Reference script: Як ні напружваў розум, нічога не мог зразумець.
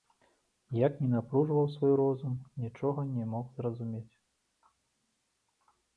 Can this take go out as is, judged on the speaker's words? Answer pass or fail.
fail